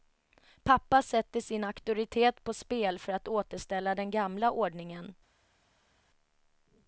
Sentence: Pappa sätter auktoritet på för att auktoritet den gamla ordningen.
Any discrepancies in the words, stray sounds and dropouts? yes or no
yes